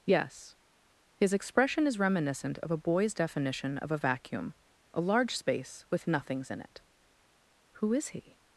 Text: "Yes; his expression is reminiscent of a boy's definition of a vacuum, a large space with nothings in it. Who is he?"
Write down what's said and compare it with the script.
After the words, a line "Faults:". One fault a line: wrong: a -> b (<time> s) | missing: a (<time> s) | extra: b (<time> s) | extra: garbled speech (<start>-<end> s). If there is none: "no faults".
"Yes; his expression is reminiscent of a boy's definition of a vacuum, a large space with nothings in it. Who is he?"
Faults:
no faults